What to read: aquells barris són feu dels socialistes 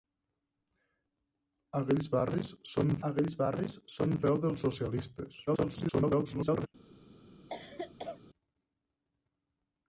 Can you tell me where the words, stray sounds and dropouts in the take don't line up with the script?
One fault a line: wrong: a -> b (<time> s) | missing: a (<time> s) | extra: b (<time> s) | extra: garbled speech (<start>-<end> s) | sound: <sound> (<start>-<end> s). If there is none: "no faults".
extra: aquells barris són (3.1 s)
extra: garbled speech (5.5-6.7 s)
sound: cough (7.5-8.2 s)